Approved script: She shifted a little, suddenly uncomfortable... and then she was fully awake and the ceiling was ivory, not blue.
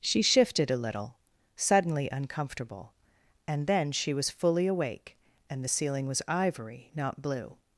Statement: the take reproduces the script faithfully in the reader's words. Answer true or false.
true